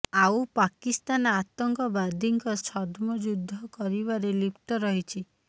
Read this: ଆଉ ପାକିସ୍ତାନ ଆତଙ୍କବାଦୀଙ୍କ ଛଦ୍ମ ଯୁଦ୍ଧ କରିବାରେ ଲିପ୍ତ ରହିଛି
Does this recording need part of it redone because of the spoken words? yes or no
no